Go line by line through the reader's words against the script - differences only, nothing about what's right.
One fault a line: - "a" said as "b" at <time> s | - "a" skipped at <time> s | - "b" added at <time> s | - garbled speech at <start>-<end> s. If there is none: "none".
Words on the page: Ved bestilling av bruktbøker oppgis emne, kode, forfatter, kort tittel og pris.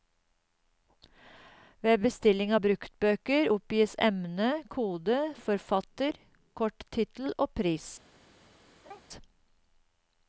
none